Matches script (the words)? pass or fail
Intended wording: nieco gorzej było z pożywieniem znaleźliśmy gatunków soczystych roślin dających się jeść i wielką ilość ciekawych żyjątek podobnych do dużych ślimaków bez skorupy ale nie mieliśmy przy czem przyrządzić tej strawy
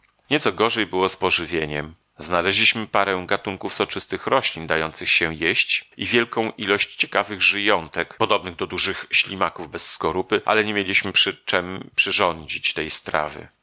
fail